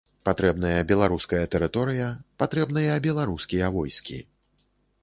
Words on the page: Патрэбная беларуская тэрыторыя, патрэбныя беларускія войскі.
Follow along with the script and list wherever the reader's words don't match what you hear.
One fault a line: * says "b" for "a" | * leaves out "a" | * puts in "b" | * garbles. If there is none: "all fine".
all fine